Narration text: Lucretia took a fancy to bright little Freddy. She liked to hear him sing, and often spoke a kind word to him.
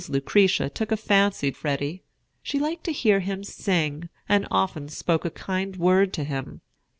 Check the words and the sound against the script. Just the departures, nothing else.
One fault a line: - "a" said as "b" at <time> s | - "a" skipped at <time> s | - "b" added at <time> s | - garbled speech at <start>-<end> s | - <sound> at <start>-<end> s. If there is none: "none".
- "to bright little" skipped at 1.5 s